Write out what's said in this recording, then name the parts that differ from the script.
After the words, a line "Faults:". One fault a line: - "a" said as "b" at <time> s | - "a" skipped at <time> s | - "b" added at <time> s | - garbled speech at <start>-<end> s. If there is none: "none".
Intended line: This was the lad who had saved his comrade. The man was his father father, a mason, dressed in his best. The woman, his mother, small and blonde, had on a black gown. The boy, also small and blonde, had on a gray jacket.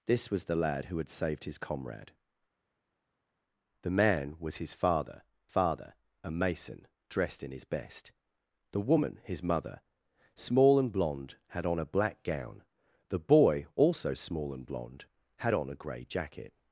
This was the lad who had saved his comrade. The man was his father father, a mason, dressed in his best. The woman, his mother, small and blonde, had on a black gown. The boy, also small and blonde, had on a gray jacket.
Faults:
none